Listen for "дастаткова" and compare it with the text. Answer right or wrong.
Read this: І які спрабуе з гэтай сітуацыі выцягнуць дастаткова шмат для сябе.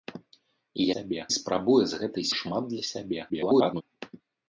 wrong